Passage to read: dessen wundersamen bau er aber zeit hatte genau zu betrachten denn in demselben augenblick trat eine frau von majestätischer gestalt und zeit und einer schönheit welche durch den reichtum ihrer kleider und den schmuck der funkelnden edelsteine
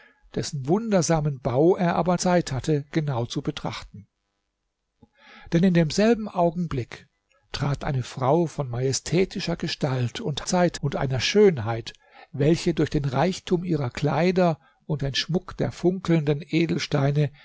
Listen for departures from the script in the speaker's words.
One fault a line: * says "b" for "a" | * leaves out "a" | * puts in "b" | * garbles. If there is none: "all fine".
all fine